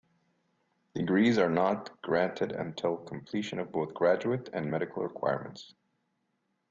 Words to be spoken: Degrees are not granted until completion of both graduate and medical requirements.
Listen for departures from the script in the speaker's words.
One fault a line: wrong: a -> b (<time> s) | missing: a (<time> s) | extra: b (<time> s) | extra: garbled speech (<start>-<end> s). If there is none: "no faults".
no faults